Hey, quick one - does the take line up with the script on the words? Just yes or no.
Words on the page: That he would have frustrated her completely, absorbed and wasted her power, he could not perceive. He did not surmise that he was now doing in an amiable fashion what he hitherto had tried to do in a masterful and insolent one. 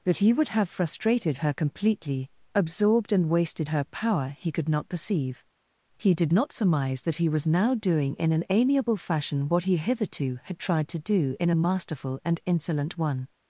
yes